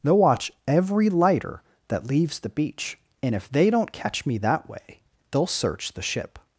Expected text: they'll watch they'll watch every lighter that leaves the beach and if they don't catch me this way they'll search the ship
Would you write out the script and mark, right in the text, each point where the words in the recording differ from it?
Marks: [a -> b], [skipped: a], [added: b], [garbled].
they'll watch [skipped: they'll watch] every lighter that leaves the beach and if they don't catch me [this -> that] way they'll search the ship